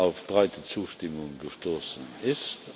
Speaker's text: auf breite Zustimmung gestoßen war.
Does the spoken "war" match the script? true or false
false